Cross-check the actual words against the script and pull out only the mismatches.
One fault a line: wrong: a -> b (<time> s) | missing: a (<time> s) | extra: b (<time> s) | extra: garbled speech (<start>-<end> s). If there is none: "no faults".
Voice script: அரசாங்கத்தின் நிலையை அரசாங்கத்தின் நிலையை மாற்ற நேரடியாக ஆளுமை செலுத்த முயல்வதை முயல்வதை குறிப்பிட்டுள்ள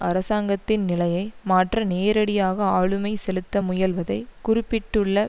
missing: அரசாங்கத்தின் நிலையை (1.2 s)
missing: முயல்வதை (4.2 s)